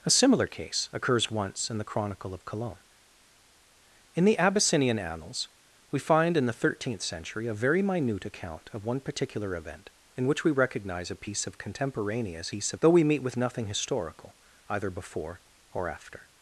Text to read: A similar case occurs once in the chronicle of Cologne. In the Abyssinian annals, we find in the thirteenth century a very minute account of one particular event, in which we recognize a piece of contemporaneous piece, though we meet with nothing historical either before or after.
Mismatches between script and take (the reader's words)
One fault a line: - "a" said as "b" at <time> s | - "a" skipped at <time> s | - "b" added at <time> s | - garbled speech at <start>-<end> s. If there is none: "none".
none